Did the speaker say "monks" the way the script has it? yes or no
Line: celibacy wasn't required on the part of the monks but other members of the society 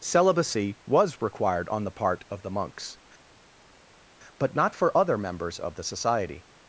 yes